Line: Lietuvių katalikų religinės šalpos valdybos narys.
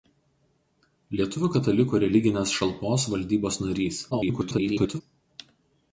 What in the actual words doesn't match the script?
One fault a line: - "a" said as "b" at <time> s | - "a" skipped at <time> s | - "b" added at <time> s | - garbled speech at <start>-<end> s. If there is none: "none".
- garbled speech at 4.1-5.0 s